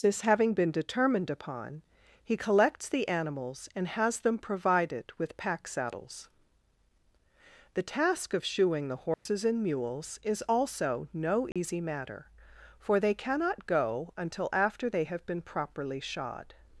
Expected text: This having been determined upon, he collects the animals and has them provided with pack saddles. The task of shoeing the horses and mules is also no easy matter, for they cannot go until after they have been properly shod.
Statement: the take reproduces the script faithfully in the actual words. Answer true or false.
true